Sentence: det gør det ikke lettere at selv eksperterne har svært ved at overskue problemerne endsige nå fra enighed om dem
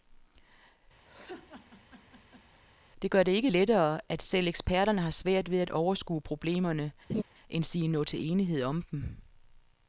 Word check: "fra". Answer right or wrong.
wrong